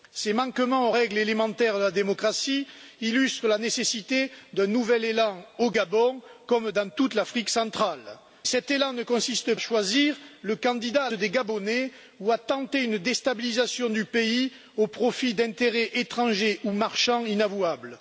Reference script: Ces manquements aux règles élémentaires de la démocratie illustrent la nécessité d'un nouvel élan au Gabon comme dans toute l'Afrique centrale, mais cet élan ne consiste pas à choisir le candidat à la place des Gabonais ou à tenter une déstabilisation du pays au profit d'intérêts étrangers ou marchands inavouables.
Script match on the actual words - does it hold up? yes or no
no